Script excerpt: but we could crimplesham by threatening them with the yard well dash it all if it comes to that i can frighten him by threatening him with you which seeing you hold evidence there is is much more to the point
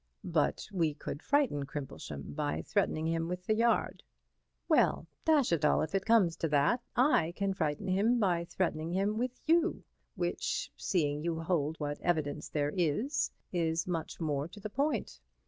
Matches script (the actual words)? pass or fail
fail